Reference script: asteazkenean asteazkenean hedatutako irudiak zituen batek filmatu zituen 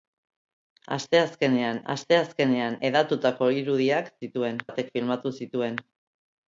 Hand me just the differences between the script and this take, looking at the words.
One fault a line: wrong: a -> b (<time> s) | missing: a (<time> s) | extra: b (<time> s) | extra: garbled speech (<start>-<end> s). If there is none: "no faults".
no faults